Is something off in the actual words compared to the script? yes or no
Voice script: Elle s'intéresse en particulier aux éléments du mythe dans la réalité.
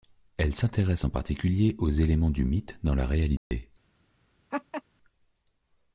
no